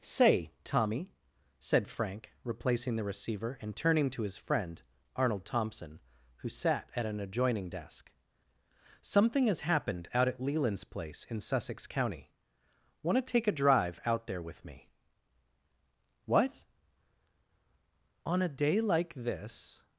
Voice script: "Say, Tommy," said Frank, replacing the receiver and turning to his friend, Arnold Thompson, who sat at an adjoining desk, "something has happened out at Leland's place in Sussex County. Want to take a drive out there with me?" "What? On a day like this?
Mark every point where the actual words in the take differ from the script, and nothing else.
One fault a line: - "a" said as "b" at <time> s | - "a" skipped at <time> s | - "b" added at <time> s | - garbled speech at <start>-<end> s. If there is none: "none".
none